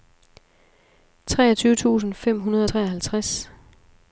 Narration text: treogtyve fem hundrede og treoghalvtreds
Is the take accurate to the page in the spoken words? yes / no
no